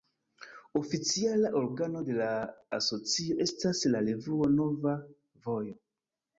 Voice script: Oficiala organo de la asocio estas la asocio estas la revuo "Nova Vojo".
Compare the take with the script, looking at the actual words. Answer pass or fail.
fail